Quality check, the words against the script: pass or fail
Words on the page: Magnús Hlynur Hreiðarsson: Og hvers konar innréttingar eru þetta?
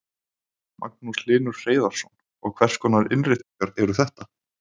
pass